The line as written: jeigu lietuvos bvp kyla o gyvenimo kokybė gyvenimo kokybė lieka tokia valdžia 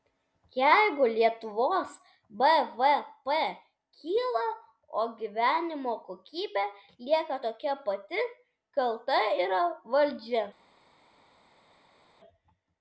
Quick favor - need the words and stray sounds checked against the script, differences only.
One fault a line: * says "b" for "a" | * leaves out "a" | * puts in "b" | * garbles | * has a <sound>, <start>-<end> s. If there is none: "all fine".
* says "lieka tokia pati kalta yra" for "gyvenimo kokybė lieka tokia"